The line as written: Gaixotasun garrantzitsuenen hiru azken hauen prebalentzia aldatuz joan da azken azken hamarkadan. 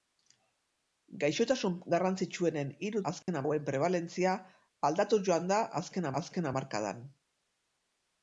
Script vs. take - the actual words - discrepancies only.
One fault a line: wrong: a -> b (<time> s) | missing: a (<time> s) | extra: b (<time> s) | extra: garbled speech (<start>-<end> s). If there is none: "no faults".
no faults